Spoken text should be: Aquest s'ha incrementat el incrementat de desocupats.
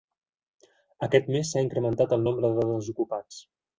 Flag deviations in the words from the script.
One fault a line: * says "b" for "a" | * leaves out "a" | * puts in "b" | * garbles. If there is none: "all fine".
* puts in "mes"
* says "nombre" for "incrementat"